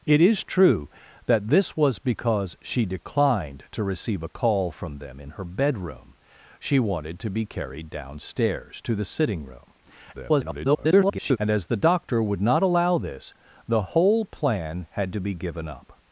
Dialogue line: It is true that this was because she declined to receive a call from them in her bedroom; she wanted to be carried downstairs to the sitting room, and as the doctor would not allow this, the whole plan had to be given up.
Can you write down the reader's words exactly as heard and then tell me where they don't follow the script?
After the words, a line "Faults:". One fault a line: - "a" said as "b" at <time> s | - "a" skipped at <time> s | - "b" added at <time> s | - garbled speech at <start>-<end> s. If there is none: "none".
It is true that this was because she declined to receive a call from them in her bedroom; she wanted to be carried downstairs to the sitting room, [garbled] and as the doctor would not allow this, the whole plan had to be given up.
Faults:
- garbled speech at 10.1-11.4 s